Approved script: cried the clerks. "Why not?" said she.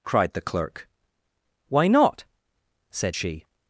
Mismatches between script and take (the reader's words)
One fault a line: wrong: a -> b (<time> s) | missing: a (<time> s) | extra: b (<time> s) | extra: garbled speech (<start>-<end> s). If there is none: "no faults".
wrong: clerks -> clerk (0.4 s)